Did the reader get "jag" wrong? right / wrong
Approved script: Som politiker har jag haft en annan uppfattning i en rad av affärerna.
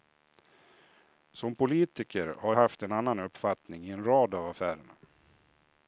wrong